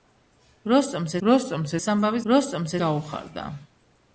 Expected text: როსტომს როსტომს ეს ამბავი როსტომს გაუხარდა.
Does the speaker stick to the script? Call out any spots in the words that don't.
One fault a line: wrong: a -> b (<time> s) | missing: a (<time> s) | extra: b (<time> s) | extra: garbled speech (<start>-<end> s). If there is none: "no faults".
no faults